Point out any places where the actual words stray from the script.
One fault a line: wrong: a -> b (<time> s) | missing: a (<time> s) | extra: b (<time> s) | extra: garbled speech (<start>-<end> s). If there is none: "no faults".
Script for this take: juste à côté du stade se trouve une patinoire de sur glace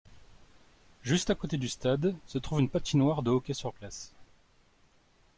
extra: hockey (3.3 s)